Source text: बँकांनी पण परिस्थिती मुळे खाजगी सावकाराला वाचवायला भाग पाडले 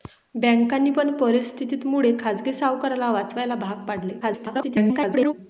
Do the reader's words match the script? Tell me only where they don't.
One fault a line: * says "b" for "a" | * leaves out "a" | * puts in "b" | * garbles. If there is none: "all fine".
* garbles